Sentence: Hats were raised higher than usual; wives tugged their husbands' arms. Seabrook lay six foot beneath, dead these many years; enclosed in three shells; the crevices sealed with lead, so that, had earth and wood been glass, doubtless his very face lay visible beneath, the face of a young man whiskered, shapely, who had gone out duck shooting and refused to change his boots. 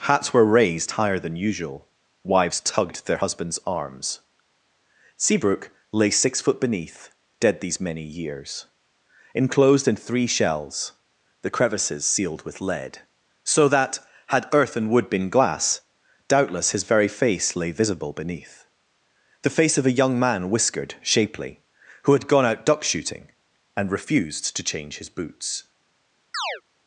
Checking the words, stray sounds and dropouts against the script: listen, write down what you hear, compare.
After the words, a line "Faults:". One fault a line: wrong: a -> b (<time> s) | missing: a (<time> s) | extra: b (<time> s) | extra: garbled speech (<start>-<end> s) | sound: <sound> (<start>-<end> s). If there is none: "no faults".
Hats were raised higher than usual; wives tugged their husbands' arms. Seabrook lay six foot beneath, dead these many years; enclosed in three shells; the crevices sealed with lead, so that, had earth and wood been glass, doubtless his very face lay visible beneath, the face of a young man whiskered, shapely, who had gone out duck shooting and refused to change his boots.
Faults:
sound: chirp (26.3-26.6 s)